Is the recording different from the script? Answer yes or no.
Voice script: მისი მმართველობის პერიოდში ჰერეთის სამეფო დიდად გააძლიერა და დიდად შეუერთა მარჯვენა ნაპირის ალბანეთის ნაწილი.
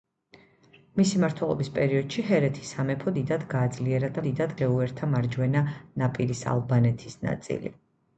no